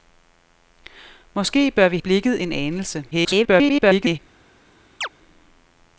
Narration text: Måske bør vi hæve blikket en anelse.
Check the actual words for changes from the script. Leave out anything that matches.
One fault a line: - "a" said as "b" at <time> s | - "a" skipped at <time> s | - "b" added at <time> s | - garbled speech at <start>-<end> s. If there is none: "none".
- "hæve" skipped at 2.0 s
- garbled speech at 3.1-4.2 s